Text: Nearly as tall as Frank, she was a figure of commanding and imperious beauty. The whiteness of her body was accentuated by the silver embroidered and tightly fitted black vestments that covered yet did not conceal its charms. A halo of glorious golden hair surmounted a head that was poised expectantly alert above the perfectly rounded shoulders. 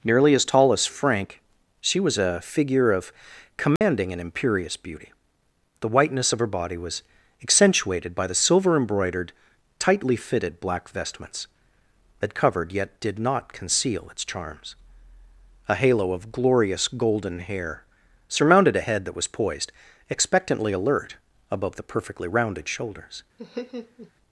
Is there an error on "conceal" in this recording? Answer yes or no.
no